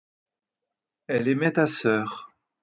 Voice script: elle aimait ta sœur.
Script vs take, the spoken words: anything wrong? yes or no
no